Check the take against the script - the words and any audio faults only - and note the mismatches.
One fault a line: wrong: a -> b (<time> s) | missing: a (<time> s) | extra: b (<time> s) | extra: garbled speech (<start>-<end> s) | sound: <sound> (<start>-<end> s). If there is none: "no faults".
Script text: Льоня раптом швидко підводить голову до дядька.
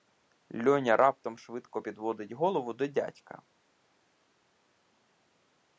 no faults